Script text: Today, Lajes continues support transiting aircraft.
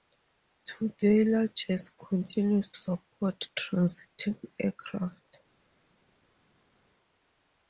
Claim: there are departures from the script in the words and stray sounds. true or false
false